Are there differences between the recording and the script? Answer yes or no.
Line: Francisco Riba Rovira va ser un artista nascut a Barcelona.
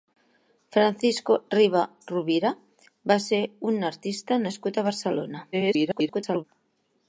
yes